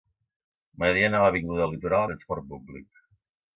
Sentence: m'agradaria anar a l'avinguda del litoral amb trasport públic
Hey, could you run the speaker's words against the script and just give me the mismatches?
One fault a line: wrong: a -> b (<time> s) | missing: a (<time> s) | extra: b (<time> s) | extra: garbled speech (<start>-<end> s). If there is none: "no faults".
missing: amb (2.1 s)